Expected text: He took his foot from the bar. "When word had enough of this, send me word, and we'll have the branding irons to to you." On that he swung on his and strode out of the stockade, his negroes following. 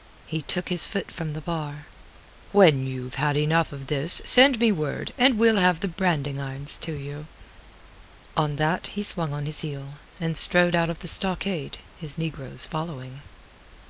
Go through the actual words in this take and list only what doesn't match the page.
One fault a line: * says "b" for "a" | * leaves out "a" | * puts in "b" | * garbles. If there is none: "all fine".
* says "you've" for "word"
* leaves out "to"
* puts in "heel"